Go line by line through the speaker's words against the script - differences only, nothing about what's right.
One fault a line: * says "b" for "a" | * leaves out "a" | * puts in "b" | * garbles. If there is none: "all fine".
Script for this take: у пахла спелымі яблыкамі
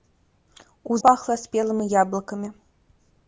all fine